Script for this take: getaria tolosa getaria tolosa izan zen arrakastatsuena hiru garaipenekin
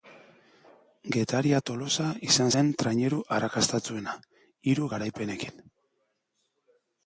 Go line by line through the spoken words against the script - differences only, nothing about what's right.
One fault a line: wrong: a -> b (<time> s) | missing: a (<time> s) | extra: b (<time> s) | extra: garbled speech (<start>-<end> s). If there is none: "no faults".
missing: getaria tolosa (2.0 s)
extra: traineru (2.8 s)